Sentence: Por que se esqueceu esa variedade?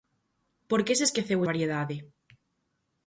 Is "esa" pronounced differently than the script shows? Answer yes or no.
yes